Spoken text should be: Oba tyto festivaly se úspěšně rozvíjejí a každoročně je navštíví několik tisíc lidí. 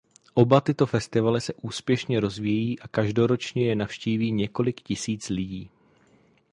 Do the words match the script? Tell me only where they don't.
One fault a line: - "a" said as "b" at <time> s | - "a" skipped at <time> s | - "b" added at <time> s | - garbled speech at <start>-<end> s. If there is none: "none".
none